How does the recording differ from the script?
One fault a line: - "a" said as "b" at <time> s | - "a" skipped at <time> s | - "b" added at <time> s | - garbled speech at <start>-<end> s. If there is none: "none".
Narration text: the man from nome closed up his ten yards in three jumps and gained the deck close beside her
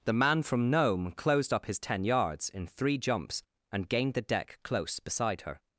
none